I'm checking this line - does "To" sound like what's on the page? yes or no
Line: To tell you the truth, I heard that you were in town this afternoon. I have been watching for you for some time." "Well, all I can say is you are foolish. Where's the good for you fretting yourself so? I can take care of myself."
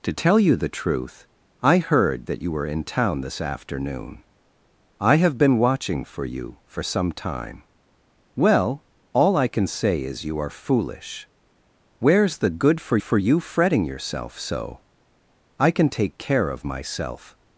yes